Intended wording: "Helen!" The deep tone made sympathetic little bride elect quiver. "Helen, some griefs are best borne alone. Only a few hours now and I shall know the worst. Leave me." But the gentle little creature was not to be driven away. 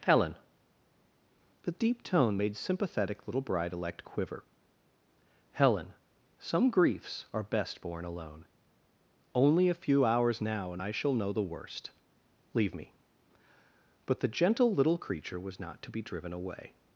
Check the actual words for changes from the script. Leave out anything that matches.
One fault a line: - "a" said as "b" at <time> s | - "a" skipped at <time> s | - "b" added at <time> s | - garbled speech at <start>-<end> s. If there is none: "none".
none